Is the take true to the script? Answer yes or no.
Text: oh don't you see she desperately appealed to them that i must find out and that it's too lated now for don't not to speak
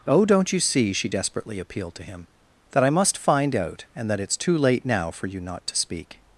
no